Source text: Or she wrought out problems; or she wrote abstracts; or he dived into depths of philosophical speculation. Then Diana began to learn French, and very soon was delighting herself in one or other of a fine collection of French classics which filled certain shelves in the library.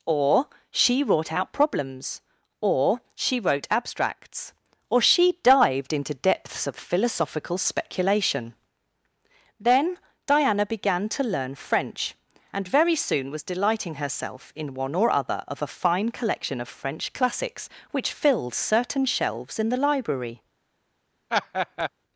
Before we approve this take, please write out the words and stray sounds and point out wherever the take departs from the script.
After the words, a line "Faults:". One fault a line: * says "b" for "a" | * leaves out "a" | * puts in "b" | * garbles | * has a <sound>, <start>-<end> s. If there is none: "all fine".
Or she wrought out problems; or she wrote abstracts; or she dived into depths of philosophical speculation. Then Diana began to learn French, and very soon was delighting herself in one or other of a fine collection of French classics which filled certain shelves in the library.
Faults:
* says "she" for "he"
* has a laugh, 21.3-21.9 s